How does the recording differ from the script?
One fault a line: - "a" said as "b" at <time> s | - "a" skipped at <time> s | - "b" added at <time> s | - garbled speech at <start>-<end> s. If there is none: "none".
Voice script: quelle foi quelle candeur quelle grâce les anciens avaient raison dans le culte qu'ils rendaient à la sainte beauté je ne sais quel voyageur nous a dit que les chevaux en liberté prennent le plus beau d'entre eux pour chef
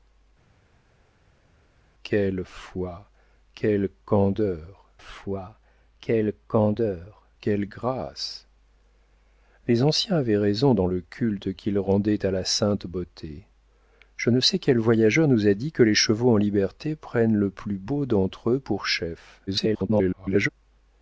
- "foi quelle candeur" added at 5.0 s
- garbled speech at 19.5-20.5 s